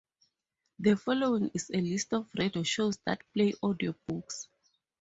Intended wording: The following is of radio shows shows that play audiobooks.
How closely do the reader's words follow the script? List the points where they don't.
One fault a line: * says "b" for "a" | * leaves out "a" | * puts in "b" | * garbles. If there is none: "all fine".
* puts in "a list"
* leaves out "shows"